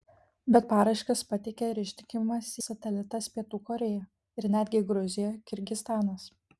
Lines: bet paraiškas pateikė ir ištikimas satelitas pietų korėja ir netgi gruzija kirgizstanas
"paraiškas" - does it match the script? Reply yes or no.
yes